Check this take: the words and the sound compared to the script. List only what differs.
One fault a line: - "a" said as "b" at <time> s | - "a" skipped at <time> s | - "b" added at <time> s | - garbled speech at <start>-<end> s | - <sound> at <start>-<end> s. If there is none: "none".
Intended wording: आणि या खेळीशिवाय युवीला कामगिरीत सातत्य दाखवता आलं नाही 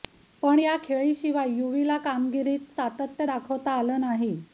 - "आणि" said as "पण" at 0.4 s